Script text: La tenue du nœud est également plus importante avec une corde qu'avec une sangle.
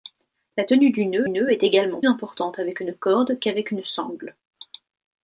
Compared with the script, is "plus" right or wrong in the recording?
wrong